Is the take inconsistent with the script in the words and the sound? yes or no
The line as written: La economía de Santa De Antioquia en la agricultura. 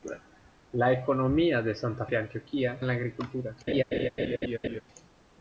yes